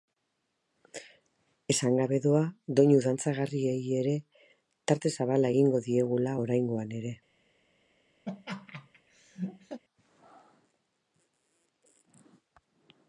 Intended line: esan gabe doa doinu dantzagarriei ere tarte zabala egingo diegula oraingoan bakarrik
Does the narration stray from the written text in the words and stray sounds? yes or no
yes